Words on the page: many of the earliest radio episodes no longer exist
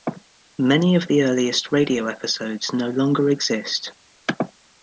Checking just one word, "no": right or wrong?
right